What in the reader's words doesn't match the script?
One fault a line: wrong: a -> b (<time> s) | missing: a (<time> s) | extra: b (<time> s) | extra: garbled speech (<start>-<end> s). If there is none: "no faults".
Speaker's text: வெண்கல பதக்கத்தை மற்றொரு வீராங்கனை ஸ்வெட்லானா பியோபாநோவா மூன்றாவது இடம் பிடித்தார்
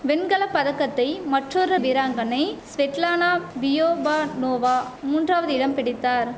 no faults